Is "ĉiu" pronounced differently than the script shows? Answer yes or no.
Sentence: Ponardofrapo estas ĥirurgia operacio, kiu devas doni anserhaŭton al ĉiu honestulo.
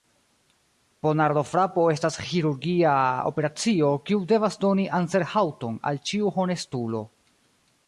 no